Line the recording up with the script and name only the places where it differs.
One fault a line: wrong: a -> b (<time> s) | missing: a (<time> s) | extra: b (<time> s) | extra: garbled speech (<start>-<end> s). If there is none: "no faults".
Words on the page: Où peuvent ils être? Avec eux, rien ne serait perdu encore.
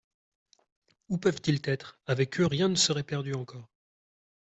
no faults